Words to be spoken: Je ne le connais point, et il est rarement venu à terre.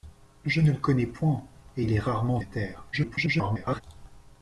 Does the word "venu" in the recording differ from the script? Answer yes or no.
yes